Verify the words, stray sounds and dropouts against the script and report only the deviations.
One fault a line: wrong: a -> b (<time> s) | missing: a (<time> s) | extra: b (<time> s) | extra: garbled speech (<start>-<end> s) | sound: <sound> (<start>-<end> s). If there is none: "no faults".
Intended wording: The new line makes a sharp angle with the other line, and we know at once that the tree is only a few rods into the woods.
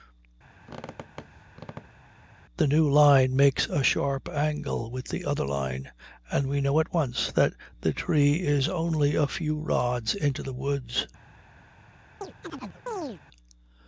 sound: squeak (0.6-2.1 s)
sound: chirp (12.2-13.2 s)